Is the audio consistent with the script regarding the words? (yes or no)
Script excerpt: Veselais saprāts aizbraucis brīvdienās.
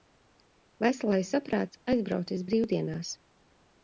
yes